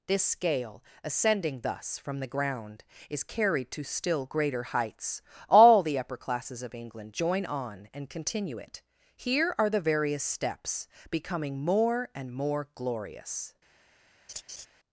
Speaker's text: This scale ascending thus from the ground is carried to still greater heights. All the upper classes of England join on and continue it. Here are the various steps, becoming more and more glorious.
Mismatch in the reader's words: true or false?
false